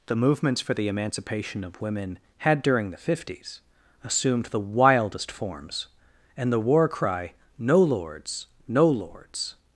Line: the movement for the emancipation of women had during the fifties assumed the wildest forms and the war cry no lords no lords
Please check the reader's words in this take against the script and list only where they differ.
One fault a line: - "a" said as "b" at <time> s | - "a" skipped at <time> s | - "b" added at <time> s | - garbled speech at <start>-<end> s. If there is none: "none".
- "movement" said as "movements" at 0.1 s